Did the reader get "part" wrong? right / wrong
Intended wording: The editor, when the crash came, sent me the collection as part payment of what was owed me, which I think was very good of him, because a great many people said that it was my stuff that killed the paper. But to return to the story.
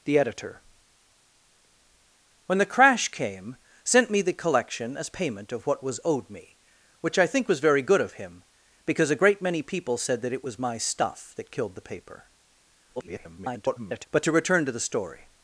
wrong